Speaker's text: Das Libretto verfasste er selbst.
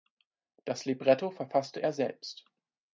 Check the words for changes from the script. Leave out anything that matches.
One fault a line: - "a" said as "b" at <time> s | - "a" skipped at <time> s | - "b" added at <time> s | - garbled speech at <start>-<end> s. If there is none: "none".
none